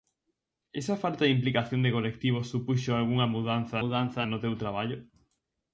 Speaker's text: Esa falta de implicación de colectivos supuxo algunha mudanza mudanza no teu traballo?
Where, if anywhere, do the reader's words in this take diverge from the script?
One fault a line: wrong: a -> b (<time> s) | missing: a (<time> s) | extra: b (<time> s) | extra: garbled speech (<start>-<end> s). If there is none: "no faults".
no faults